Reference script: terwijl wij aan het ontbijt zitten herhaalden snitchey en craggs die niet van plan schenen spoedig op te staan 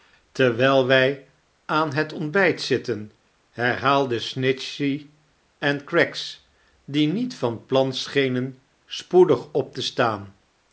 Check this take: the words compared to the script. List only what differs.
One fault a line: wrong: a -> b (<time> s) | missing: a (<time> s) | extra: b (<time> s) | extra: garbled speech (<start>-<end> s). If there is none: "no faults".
no faults